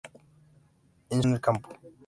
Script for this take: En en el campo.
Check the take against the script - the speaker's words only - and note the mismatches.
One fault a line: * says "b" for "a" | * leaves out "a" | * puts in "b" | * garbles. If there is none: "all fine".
all fine